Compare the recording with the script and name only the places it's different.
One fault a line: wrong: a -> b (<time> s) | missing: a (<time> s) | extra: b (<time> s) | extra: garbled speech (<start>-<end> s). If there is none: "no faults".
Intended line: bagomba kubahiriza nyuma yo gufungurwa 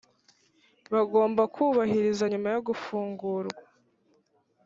no faults